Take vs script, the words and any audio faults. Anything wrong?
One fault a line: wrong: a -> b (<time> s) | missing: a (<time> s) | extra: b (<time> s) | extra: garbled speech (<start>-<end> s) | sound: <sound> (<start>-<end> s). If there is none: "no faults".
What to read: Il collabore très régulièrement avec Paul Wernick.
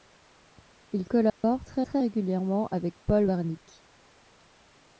sound: dropout (1.3-1.4 s)
extra: très (1.8 s)